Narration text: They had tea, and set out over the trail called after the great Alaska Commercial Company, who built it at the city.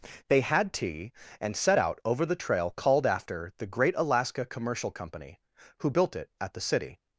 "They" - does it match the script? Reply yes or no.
yes